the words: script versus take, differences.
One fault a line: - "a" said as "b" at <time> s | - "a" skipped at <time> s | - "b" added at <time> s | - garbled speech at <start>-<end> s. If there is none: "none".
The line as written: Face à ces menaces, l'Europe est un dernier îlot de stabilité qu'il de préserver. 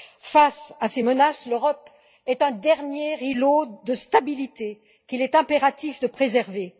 - "est impératif" added at 5.2 s